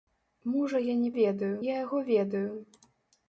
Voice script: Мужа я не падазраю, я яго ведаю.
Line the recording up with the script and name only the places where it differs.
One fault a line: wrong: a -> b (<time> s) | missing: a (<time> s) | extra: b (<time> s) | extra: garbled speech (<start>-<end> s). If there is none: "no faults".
wrong: падазраю -> ведаю (1.2 s)